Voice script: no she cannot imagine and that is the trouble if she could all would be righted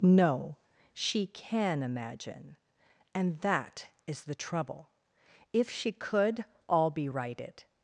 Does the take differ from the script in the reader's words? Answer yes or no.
yes